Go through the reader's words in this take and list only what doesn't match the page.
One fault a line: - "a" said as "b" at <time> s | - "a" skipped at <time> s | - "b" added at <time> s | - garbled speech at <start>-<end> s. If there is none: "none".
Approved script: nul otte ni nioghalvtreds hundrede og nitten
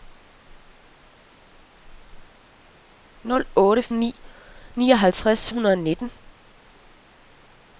none